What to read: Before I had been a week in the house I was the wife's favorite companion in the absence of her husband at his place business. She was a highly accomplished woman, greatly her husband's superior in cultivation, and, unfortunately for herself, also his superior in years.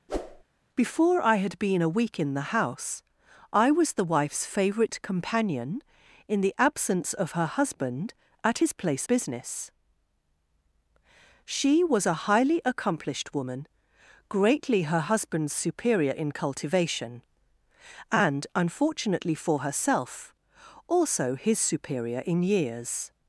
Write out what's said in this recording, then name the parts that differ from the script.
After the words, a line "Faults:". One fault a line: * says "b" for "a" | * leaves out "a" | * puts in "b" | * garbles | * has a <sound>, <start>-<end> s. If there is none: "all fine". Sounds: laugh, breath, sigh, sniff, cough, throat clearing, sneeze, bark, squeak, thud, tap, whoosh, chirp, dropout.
Before I had been a week in the house I was the wife's favorite companion in the absence of her husband at his place business. She was a highly accomplished woman, greatly her husband's superior in cultivation, and, unfortunately for herself, also his superior in years.
Faults:
* has a whoosh, 0.1-0.4 s